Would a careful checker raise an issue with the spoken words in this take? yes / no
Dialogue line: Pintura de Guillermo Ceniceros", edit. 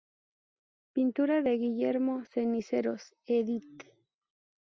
no